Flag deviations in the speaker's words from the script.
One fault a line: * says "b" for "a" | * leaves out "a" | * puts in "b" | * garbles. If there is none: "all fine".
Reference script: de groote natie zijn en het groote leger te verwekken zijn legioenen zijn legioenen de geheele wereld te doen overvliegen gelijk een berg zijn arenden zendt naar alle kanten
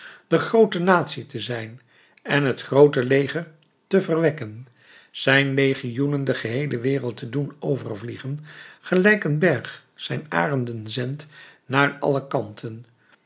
* puts in "te"
* leaves out "zijn legioenen"